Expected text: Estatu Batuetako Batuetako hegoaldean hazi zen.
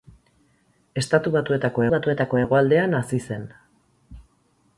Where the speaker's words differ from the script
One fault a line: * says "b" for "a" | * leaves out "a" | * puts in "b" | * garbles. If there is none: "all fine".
all fine